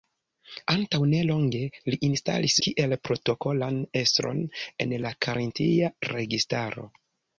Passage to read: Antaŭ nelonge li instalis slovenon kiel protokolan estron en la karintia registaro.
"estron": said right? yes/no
yes